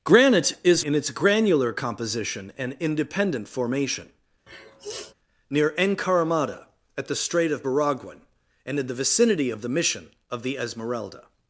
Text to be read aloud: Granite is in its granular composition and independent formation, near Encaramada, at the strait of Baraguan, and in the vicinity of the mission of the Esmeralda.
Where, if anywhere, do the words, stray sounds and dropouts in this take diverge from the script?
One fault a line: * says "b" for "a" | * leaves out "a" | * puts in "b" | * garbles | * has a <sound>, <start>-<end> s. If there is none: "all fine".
* has a sniff, 4.5-5.1 s